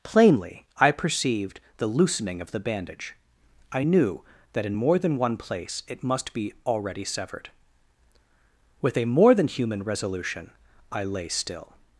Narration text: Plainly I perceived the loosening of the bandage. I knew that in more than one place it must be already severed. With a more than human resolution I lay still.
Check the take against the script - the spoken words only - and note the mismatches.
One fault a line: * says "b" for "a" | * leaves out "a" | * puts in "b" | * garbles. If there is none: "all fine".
all fine